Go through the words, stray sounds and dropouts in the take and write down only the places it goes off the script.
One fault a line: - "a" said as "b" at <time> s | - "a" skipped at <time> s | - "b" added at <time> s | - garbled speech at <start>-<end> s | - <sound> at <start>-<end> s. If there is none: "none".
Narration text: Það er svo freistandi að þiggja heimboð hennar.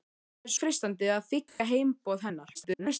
- "svo" skipped at 0.5 s
- dropout at 1.5-1.6 s
- garbled speech at 2.5-3.0 s